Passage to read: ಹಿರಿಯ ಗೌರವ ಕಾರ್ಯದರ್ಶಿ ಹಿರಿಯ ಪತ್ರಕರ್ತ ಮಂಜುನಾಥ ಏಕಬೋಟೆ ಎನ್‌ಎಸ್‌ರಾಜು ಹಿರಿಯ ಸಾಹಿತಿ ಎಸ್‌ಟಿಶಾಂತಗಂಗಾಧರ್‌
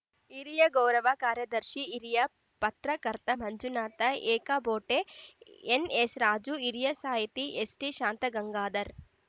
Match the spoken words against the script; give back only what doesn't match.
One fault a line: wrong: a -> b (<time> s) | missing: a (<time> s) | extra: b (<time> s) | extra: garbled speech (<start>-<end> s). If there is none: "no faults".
no faults